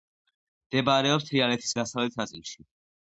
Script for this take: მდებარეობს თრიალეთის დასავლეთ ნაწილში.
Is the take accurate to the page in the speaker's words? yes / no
yes